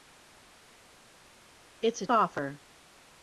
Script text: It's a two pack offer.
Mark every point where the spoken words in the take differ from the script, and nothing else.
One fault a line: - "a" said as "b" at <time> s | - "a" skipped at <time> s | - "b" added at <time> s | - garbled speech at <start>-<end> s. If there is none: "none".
- "two pack" skipped at 2.1 s